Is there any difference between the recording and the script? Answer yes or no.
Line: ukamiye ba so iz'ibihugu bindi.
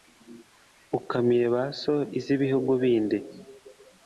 no